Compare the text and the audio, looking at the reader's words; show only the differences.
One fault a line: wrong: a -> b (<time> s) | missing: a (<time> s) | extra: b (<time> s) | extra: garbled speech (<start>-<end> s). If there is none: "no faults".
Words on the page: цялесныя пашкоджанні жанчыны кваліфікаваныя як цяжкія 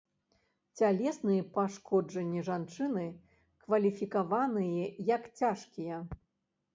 no faults